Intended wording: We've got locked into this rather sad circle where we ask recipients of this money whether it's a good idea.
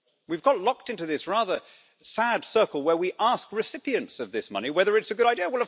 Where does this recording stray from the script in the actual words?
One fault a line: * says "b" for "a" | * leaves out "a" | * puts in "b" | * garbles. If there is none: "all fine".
all fine